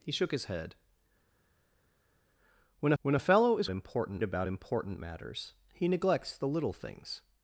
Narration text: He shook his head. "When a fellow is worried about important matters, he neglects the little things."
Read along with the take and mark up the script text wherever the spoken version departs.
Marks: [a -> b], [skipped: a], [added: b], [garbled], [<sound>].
He shook his head. "When [added: when] a fellow is [worried -> important] about important matters, he neglects the little things."